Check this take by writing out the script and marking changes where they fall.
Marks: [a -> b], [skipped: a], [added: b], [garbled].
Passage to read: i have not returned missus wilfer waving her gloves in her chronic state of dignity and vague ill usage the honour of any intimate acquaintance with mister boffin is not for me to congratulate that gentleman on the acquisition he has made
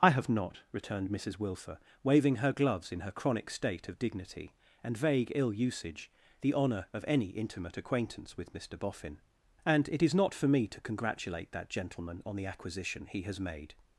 i have not returned missus wilfer waving her gloves in her chronic state of dignity and vague ill usage the honour of any intimate acquaintance with mister boffin [added: and it] is not for me to congratulate that gentleman on the acquisition he has made